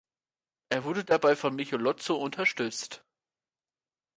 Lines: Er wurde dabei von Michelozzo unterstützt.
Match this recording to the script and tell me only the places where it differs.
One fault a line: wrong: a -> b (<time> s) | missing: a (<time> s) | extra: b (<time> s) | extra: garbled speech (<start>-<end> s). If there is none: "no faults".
no faults